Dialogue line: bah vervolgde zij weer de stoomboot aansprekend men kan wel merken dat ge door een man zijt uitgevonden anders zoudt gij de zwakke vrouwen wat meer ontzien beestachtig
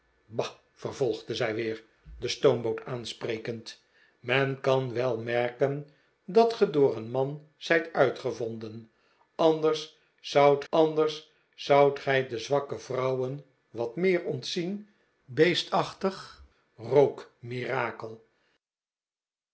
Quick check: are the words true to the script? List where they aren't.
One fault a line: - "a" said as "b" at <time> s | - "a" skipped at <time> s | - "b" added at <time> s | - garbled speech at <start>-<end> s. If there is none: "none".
- "anders zoudt" added at 10.7 s